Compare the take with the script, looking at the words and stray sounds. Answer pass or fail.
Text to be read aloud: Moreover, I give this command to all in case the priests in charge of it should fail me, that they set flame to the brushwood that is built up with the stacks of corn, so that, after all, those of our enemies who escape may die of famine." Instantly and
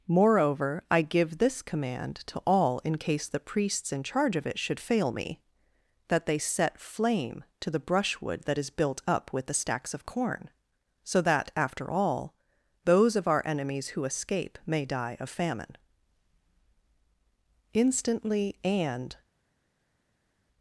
pass